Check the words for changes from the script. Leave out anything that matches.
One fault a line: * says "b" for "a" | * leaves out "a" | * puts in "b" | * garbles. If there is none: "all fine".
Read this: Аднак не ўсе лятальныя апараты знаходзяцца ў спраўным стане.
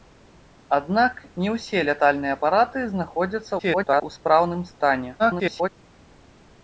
* garbles
* garbles